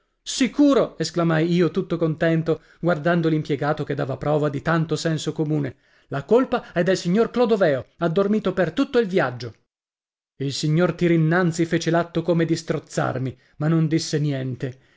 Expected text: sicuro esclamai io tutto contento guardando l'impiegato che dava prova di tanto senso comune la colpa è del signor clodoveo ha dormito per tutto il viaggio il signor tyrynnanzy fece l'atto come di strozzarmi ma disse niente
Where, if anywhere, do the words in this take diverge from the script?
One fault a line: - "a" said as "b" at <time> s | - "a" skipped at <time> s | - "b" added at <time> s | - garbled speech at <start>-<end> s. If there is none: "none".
- "non" added at 13.7 s